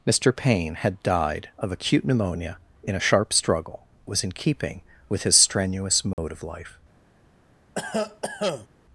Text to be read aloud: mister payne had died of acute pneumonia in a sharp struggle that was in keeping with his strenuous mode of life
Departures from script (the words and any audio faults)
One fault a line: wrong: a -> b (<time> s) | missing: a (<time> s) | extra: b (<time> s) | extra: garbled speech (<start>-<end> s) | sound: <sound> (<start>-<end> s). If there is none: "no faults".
missing: that (3.9 s)
sound: dropout (6.1-6.2 s)
sound: cough (7.7-8.7 s)